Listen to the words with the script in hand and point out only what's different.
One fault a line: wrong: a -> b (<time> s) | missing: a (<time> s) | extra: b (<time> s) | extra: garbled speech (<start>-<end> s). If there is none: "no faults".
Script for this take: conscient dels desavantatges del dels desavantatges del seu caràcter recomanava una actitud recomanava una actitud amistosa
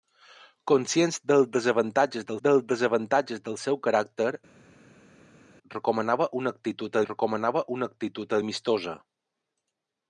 no faults